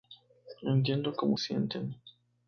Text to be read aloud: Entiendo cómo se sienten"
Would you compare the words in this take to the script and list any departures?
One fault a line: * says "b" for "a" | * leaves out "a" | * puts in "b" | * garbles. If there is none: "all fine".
* leaves out "se"